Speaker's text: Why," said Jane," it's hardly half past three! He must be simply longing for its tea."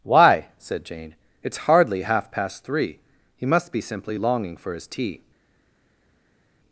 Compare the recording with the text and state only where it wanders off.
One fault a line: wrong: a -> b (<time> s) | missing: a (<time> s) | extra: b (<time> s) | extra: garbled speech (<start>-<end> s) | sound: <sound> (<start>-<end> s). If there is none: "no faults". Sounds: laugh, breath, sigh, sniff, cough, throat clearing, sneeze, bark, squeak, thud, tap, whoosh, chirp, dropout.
wrong: its -> his (4.7 s)